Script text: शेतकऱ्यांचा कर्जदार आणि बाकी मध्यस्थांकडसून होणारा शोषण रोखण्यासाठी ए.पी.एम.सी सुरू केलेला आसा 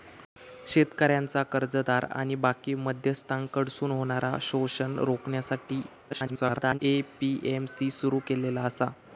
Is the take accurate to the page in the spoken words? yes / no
no